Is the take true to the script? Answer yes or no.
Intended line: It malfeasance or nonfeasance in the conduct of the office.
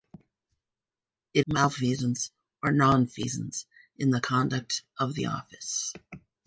yes